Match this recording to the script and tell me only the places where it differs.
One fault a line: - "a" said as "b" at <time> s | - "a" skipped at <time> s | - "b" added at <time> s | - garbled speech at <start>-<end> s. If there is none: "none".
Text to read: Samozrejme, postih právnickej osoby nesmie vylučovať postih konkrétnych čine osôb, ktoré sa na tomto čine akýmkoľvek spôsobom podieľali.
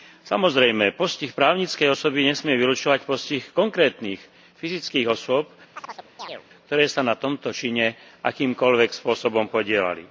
- "čine" said as "fyzických" at 4.6 s